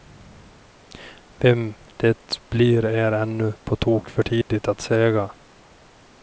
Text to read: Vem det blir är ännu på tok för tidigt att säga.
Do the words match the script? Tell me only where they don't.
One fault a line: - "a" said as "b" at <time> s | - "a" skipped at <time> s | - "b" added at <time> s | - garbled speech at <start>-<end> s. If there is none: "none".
none